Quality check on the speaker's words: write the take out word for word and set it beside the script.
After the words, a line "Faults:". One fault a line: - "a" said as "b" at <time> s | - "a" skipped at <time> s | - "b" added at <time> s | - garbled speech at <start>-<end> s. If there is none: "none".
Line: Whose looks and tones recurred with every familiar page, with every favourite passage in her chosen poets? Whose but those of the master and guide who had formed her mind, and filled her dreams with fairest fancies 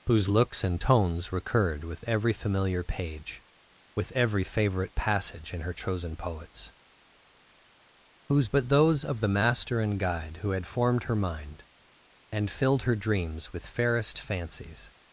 Whose looks and tones recurred with every familiar page, with every favourite passage in her chosen poets? Whose but those of the master and guide who had formed her mind, and filled her dreams with fairest fancies
Faults:
none